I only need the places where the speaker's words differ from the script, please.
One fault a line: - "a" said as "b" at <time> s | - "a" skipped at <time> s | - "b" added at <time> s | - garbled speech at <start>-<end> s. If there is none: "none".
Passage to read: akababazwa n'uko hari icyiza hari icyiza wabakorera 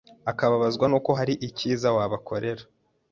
- "hari icyiza" skipped at 1.9 s